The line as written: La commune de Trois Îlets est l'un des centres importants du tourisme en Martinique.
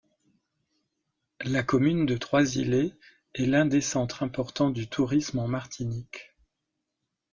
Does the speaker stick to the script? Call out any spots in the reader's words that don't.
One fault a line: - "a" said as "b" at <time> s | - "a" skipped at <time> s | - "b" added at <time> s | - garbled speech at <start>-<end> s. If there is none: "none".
none